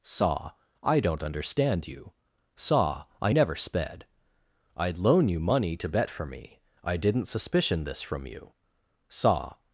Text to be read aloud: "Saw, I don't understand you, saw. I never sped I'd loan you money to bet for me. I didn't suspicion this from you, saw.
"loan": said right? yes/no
yes